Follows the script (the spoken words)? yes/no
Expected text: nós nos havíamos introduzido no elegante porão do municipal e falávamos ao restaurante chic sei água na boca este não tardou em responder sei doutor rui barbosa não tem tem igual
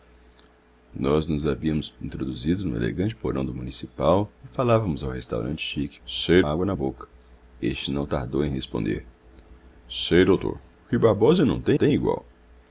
yes